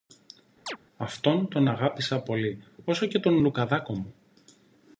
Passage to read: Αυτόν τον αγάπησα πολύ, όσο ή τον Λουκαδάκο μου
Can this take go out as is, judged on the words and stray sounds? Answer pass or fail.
fail